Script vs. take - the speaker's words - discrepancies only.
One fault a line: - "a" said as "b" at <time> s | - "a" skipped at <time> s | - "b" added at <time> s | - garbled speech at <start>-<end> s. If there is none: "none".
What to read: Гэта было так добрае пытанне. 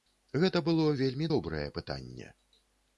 - "так" said as "вельмі" at 1.0 s